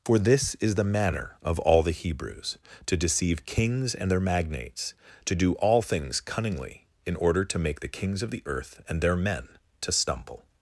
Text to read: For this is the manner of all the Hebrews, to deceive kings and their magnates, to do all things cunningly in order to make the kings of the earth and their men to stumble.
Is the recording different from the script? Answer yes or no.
no